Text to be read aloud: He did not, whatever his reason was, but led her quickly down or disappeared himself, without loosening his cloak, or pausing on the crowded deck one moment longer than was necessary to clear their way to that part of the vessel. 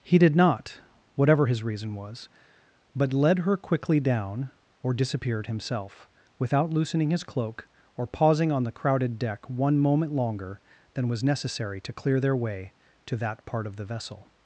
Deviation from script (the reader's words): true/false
false